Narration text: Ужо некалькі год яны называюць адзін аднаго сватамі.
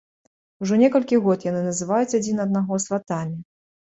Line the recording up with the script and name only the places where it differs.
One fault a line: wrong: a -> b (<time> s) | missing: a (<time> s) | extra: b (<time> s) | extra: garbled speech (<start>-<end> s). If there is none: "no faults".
no faults